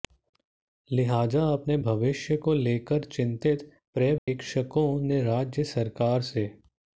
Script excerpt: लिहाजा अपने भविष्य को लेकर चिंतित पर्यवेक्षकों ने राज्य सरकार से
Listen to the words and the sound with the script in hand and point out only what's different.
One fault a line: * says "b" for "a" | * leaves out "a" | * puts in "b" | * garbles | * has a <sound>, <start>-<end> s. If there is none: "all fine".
* has a dropout, 4.2-4.3 s